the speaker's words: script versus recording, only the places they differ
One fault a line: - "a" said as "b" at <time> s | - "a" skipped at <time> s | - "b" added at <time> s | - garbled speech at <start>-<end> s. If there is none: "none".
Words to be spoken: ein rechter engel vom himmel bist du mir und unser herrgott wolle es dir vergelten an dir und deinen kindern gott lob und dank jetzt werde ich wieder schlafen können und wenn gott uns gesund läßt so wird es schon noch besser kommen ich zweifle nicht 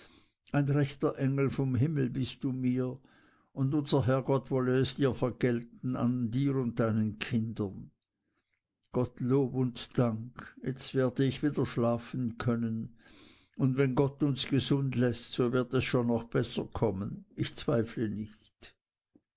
none